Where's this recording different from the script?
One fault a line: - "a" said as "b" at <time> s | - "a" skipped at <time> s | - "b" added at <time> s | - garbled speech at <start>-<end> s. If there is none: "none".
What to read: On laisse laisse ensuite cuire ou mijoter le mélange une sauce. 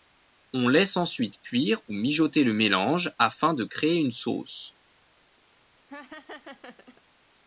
- "laisse" skipped at 1.0 s
- "afin de créer" added at 3.2 s